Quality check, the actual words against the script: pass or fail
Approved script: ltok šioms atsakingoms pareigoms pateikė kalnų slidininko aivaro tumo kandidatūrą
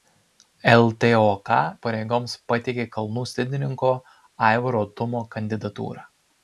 fail